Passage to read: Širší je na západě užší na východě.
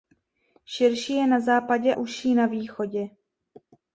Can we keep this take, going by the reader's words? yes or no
yes